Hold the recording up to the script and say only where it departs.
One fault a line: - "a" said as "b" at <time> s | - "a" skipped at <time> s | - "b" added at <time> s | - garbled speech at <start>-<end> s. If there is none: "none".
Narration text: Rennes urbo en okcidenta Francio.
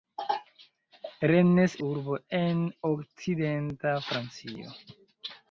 none